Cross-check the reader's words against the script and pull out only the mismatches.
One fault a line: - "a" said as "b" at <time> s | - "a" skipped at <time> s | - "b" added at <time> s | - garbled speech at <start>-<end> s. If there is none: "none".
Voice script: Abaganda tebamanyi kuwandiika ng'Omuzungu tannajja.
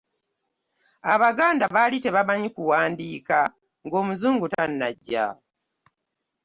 - "baali" added at 1.7 s